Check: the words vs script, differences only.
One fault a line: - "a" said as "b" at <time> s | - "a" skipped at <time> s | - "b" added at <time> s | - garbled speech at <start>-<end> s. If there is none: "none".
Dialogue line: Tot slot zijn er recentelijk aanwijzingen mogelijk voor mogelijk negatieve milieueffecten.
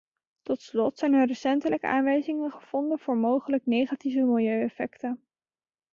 - "mogelijk" said as "gevonden" at 2.5 s